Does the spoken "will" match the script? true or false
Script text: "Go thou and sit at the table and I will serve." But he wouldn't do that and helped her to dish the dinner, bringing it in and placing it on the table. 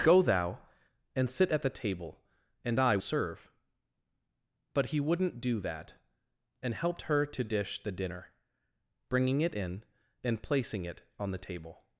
false